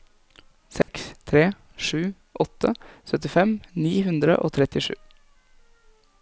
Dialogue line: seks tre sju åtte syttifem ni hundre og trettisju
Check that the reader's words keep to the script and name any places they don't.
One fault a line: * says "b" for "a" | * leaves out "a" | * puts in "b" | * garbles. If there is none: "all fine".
all fine